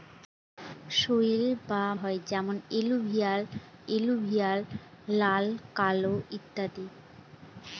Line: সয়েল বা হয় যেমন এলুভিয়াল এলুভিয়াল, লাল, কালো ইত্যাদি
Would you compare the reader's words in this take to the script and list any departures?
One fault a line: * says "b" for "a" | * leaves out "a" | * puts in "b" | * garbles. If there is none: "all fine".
all fine